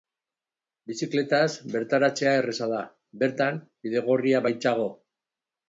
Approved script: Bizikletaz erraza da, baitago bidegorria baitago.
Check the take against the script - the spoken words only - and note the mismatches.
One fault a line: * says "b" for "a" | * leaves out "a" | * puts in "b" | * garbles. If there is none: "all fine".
* puts in "bertaratzea"
* says "bertan" for "baitago"